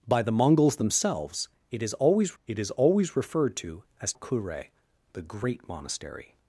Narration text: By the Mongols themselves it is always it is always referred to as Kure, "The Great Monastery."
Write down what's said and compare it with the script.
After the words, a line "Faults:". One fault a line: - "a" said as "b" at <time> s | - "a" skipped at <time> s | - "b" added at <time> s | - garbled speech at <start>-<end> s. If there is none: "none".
By the Mongols themselves it is always it is always referred to as Kure, "The Great Monastery."
Faults:
none